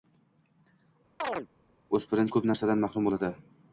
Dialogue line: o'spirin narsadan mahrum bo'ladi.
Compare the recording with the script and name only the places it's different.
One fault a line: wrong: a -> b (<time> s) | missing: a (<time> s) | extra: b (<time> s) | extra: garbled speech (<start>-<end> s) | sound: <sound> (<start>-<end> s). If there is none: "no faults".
sound: chirp (1.2-1.5 s)
extra: ko'p (2.4 s)